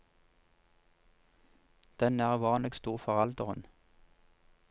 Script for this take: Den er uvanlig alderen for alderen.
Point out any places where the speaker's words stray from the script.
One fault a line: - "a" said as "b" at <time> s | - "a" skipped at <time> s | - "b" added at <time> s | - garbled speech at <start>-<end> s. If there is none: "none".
- "alderen" said as "stor" at 2.7 s